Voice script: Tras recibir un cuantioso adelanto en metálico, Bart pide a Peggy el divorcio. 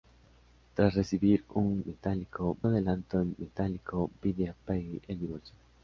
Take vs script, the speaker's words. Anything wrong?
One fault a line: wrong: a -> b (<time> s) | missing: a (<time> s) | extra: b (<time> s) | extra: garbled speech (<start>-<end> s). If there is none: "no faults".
wrong: cuantioso -> metálico (1.8 s)
missing: Bart (4.1 s)